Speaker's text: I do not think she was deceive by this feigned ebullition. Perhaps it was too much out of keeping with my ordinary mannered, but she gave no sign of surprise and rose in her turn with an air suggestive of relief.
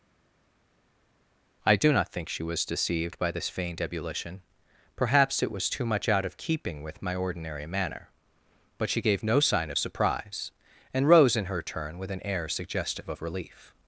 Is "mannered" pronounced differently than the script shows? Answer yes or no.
yes